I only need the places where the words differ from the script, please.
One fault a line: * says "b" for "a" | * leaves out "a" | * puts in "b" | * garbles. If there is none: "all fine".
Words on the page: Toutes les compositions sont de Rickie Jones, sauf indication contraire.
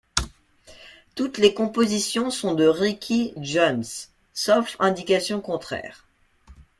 all fine